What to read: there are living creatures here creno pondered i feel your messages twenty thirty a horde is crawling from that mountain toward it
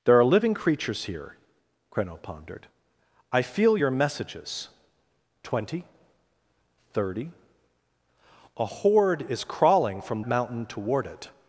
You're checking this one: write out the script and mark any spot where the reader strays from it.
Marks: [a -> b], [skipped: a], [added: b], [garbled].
there are living creatures here creno pondered i feel your messages twenty thirty a horde is crawling from [skipped: that] mountain toward it